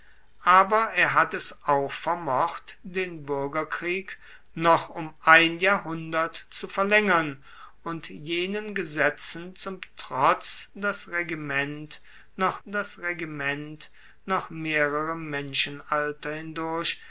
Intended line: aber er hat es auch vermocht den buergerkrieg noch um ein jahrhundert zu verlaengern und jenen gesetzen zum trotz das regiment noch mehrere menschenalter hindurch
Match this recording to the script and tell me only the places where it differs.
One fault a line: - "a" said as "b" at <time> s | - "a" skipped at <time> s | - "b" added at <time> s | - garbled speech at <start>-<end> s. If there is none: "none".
- "das regiment noch" added at 12.6 s